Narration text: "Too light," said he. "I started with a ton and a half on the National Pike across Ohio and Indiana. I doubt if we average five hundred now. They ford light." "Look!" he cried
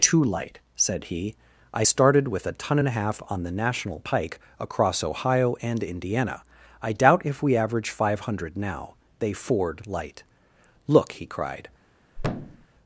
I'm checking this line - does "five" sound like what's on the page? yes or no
yes